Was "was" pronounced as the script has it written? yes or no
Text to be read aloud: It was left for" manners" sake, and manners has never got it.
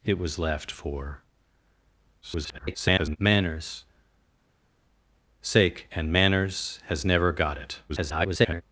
yes